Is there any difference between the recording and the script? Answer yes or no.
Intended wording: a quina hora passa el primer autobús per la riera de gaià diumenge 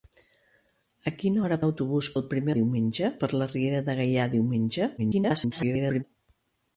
yes